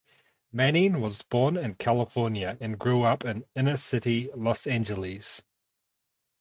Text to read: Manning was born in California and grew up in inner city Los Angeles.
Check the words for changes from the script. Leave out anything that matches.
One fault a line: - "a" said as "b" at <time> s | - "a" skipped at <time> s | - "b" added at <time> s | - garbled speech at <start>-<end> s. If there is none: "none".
none